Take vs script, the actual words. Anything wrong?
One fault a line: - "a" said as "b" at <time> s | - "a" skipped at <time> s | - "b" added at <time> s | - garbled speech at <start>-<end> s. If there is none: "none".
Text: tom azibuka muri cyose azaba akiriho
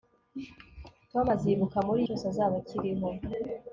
none